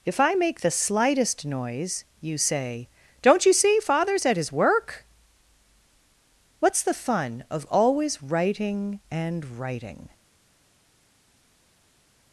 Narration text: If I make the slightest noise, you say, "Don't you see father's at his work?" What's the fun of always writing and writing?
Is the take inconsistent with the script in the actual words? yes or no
no